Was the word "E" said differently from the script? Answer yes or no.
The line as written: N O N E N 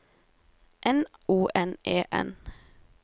no